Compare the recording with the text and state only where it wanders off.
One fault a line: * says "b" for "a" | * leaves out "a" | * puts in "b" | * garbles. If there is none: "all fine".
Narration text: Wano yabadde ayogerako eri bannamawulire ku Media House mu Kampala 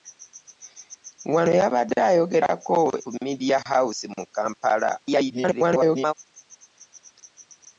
* leaves out "eri bannamawulire"
* garbles